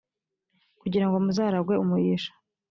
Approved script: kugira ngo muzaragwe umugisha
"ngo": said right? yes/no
yes